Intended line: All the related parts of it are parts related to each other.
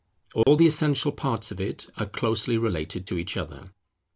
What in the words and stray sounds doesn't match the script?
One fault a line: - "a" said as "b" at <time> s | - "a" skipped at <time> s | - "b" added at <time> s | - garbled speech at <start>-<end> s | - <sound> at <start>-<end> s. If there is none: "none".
- dropout at 0.4-0.5 s
- "related" said as "essential" at 0.7 s
- "parts" said as "closely" at 2.1 s